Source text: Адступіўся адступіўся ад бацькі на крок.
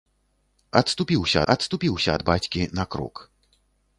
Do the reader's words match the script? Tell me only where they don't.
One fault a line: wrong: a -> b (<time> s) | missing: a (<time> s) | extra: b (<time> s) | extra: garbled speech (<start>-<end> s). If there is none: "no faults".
no faults